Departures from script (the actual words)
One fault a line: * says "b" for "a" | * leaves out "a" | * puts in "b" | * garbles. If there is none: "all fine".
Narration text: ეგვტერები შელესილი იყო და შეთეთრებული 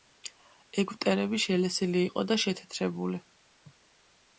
all fine